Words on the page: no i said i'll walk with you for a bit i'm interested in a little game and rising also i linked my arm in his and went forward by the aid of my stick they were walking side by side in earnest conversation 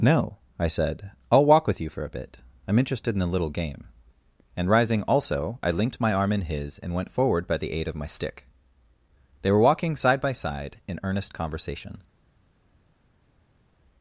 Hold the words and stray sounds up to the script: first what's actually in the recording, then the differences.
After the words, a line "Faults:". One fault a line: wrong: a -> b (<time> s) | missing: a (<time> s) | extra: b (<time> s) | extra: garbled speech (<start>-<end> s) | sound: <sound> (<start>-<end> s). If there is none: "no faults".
no i said i'll walk with you for a bit i'm interested in a little game and rising also i linked my arm in his and went forward by the aid of my stick they were walking side by side in earnest conversation
Faults:
no faults